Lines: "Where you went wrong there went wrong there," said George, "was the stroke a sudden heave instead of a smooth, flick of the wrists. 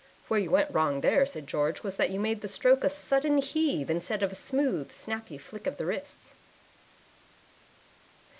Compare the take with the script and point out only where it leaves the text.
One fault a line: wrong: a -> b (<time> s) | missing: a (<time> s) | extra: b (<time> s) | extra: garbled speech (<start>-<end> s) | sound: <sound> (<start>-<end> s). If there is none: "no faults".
wrong: went wrong there said George was -> said George was that you made (1.3 s)
extra: snappy (4.9 s)